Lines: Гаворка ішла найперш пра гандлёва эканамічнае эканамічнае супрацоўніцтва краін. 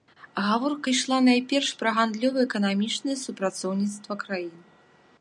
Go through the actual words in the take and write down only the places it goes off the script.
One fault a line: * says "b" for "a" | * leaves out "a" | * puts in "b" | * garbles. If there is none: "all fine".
* leaves out "эканамічнае"